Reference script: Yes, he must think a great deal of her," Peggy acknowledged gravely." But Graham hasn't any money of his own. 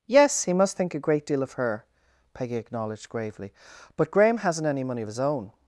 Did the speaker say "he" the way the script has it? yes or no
yes